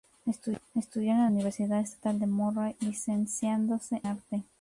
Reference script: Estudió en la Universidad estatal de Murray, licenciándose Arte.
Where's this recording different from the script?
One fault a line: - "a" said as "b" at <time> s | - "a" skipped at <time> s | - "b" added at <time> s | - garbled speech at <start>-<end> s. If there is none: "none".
none